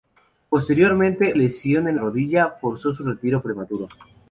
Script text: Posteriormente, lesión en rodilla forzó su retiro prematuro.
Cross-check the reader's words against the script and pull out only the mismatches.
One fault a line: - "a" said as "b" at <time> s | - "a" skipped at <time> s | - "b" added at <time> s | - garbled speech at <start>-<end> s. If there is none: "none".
none